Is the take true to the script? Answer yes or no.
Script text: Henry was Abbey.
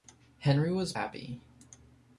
yes